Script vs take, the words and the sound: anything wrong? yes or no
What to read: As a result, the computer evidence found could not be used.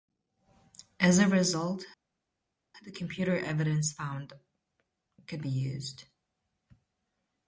yes